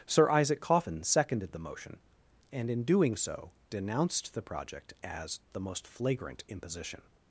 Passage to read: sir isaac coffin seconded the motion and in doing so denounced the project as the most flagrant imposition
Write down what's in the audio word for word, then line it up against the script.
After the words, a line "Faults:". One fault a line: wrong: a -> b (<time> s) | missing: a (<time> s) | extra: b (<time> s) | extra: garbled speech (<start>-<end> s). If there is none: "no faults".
sir isaac coffin seconded the motion and in doing so denounced the project as the most flagrant imposition
Faults:
no faults